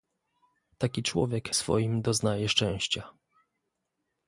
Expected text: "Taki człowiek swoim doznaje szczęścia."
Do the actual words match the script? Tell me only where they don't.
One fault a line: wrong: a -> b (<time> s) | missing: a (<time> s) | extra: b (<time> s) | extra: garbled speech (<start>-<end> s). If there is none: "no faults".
no faults